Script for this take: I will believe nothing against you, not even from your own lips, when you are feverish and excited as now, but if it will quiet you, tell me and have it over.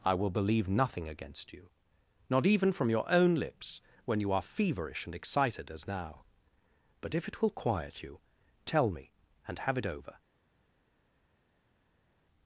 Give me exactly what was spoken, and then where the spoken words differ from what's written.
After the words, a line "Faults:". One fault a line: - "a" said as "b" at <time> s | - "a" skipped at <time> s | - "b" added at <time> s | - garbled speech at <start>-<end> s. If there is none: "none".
I will believe nothing against you, not even from your own lips, when you are feverish and excited as now, but if it will quiet you, tell me and have it over.
Faults:
none